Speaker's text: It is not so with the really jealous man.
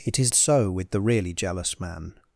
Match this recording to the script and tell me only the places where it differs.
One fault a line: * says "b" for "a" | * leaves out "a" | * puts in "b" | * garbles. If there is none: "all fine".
* leaves out "not"